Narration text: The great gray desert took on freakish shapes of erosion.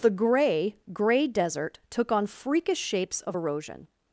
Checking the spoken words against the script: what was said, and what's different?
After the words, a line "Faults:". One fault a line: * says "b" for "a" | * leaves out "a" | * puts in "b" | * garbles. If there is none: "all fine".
The grey gray desert took on freakish shapes of erosion.
Faults:
* says "grey" for "great"